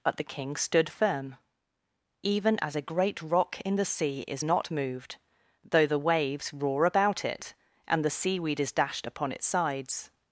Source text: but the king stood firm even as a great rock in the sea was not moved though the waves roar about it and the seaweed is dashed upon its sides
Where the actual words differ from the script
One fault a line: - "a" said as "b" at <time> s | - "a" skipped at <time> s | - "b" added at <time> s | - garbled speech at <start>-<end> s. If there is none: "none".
- "was" said as "is" at 4.3 s